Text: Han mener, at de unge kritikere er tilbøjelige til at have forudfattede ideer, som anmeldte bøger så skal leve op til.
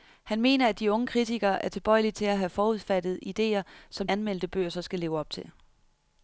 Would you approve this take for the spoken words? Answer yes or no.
yes